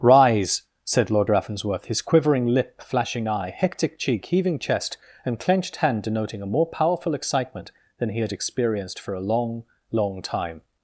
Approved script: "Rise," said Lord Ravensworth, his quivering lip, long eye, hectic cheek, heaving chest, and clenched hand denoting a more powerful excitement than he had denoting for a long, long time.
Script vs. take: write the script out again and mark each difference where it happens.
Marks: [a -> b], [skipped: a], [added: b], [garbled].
"Rise," said Lord Ravensworth, his quivering lip, [long -> flashing] eye, hectic cheek, heaving chest, and clenched hand denoting a more powerful excitement than he had [denoting -> experienced] for a long, long time.